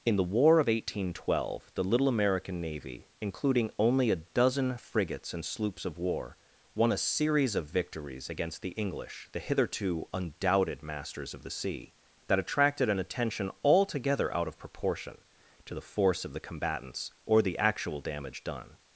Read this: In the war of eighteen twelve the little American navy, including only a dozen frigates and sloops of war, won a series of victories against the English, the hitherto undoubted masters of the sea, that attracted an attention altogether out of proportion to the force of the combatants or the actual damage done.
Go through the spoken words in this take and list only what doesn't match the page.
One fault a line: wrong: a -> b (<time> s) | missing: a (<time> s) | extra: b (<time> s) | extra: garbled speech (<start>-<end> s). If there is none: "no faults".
no faults